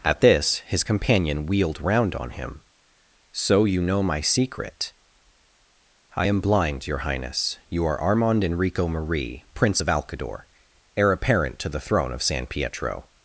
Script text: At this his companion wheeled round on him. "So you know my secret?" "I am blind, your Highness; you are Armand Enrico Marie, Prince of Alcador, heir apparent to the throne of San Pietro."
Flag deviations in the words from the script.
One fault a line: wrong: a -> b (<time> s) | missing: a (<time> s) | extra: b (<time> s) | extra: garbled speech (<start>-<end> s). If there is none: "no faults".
no faults